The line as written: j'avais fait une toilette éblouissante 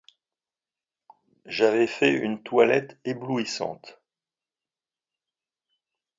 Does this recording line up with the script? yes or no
yes